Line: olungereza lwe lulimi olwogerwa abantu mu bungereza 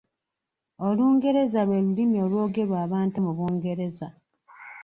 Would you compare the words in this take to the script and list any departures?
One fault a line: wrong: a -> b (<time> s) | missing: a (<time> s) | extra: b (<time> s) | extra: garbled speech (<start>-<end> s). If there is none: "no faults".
no faults